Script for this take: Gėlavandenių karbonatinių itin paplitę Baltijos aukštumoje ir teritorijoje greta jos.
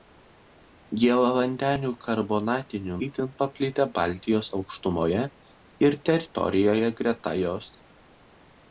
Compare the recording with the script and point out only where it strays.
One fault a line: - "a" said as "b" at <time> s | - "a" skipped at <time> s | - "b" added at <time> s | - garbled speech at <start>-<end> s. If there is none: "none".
none